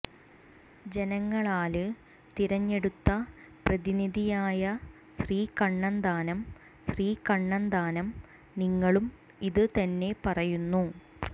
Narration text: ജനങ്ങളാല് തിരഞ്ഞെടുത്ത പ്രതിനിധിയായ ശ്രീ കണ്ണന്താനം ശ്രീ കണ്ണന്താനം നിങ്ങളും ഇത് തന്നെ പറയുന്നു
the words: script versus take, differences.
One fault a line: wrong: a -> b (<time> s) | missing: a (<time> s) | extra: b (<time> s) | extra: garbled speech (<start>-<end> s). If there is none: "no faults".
no faults